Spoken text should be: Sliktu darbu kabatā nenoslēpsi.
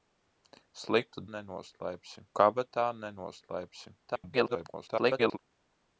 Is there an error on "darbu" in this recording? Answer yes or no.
yes